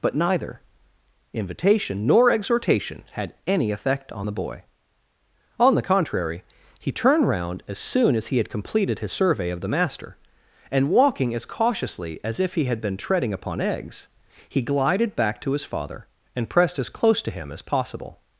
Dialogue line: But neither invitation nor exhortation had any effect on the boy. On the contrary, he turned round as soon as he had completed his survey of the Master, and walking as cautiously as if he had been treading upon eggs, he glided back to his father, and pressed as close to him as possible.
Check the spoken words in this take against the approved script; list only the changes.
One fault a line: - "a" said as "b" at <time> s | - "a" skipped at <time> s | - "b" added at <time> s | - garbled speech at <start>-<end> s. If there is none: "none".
none